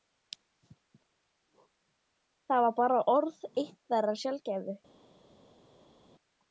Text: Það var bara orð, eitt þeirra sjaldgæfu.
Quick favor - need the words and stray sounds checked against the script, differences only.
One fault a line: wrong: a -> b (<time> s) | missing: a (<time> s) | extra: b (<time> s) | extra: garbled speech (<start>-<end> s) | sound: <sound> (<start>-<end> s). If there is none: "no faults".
no faults